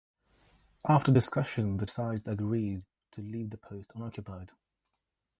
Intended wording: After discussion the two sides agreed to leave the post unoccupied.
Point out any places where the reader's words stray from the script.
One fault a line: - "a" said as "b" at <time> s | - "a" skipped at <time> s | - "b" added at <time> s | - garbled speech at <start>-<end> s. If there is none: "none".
- "two" skipped at 1.8 s